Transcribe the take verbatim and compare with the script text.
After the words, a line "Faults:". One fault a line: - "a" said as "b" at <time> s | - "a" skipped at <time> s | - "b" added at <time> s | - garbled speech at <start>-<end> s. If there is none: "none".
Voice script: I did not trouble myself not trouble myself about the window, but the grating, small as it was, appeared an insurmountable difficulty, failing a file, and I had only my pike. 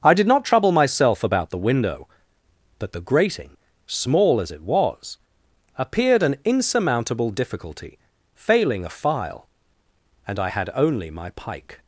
I did not trouble myself about the window, but the grating, small as it was, appeared an insurmountable difficulty, failing a file, and I had only my pike.
Faults:
- "not trouble myself" skipped at 1.2 s